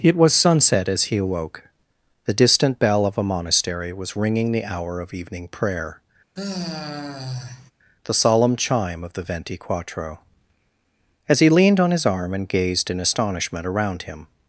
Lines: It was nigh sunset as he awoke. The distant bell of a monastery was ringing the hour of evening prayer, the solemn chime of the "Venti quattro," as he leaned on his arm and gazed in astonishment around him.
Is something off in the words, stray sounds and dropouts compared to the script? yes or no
yes